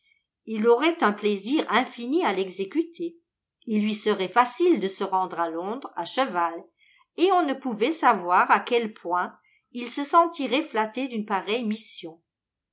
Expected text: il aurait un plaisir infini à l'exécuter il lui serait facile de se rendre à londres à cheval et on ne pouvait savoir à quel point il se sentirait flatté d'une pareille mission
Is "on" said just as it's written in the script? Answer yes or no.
yes